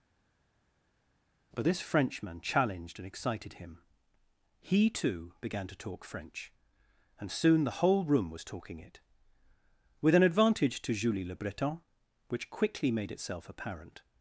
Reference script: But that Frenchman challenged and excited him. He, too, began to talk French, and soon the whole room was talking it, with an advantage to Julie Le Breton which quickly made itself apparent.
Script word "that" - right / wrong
wrong